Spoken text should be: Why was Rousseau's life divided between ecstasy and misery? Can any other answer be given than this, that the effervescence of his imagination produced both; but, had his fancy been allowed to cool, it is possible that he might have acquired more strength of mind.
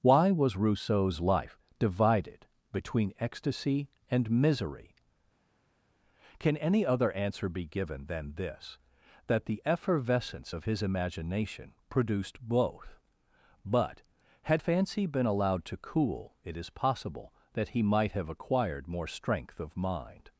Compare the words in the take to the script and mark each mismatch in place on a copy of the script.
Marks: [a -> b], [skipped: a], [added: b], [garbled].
Why was Rousseau's life divided between ecstasy and misery? Can any other answer be given than this, that the effervescence of his imagination produced both; but, had [skipped: his] fancy been allowed to cool, it is possible that he might have acquired more strength of mind.